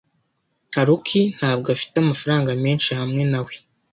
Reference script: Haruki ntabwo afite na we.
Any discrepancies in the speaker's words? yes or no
yes